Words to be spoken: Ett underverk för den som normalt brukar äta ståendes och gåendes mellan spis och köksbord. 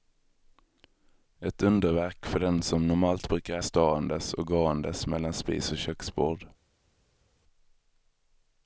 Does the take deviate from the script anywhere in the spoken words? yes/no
yes